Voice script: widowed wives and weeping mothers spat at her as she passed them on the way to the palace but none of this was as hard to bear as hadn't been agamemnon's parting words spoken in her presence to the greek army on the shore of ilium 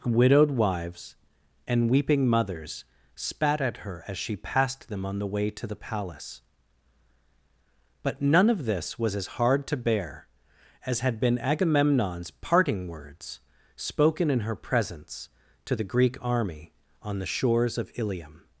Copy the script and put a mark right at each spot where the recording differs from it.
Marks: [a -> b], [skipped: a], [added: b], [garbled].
widowed wives and weeping mothers spat at her as she passed them on the way to the palace but none of this was as hard to bear as [hadn't -> had] been agamemnon's parting words spoken in her presence to the greek army on the [shore -> shores] of ilium